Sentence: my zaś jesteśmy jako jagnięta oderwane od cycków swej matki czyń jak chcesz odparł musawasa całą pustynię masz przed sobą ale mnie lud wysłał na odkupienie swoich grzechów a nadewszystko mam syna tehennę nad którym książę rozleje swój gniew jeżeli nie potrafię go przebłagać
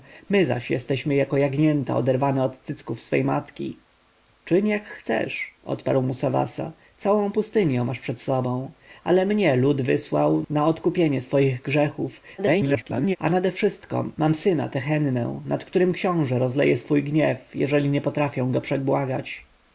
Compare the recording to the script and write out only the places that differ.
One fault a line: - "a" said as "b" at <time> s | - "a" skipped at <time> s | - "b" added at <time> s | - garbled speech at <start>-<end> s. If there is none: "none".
- garbled speech at 12.4-13.2 s